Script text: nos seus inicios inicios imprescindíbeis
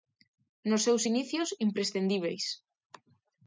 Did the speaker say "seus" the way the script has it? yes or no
yes